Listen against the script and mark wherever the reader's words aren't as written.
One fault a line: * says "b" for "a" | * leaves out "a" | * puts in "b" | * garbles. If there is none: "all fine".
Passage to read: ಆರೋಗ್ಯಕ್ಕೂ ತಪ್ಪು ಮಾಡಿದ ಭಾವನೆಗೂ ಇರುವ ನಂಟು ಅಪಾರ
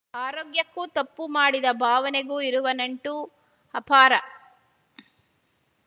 all fine